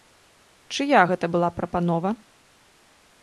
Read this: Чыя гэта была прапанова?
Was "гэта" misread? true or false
false